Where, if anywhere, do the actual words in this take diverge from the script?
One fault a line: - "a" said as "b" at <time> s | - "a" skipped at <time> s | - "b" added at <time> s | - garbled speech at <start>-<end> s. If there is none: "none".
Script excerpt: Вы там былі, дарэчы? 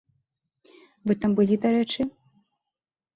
none